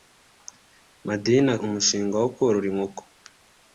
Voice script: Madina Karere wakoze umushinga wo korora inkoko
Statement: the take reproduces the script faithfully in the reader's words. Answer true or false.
false